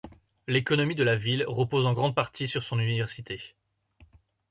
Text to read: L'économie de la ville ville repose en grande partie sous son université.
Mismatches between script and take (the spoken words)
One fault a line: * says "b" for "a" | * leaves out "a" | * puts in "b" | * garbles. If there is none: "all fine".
* leaves out "ville"
* says "sur" for "sous"